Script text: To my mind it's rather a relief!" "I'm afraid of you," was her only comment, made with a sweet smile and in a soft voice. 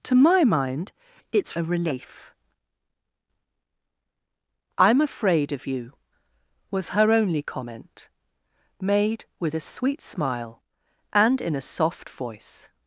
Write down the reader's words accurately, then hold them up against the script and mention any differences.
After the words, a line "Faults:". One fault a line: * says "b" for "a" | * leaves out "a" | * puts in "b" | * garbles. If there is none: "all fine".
To my mind it's a relief!" "I'm afraid of you," was her only comment, made with a sweet smile and in a soft voice.
Faults:
* leaves out "rather"